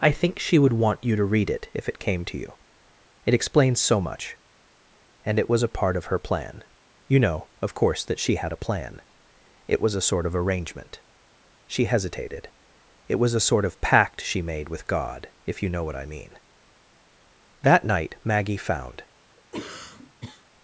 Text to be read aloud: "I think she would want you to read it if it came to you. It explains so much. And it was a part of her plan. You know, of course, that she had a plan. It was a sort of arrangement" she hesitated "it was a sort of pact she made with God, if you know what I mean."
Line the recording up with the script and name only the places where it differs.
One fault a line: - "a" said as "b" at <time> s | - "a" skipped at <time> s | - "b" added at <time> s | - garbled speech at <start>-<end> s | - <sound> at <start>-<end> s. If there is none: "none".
- "That night Maggie found" added at 17.6 s
- cough at 19.4-20.4 s